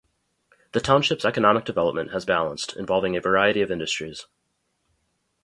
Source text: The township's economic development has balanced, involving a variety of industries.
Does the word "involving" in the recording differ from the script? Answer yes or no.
no